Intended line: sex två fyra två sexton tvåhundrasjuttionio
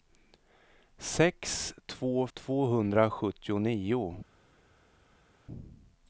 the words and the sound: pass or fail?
fail